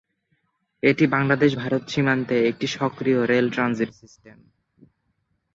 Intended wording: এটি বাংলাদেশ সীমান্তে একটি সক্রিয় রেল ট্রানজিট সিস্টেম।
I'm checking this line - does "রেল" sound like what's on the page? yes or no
yes